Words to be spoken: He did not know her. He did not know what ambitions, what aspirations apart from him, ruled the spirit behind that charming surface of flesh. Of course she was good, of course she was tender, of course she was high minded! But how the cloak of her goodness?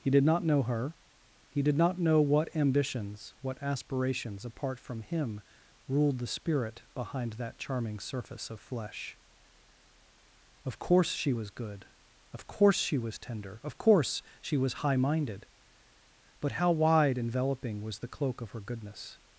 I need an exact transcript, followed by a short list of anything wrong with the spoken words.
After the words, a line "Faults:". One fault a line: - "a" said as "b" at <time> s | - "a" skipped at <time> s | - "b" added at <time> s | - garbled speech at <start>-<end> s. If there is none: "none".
He did not know her. He did not know what ambitions, what aspirations apart from him, ruled the spirit behind that charming surface of flesh. Of course she was good, of course she was tender, of course she was high minded! But how wide enveloping was the cloak of her goodness?
Faults:
- "wide enveloping was" added at 16.7 s